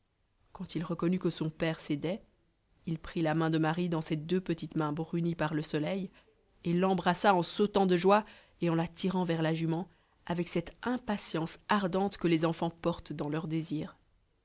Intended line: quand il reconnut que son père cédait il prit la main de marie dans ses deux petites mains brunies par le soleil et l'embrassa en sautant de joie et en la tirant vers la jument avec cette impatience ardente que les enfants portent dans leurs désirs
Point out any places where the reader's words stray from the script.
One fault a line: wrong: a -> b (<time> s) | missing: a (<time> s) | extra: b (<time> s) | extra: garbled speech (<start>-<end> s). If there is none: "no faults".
no faults